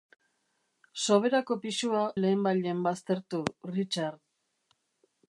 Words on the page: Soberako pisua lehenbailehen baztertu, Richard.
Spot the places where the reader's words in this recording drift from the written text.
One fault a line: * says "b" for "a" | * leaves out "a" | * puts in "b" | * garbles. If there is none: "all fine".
all fine